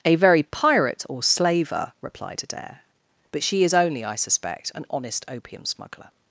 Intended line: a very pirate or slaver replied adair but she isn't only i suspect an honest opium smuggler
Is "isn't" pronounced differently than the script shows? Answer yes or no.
yes